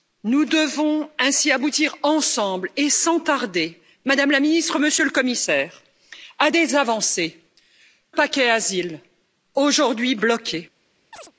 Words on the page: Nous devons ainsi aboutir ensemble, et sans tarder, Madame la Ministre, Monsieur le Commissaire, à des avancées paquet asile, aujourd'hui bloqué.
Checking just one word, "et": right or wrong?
right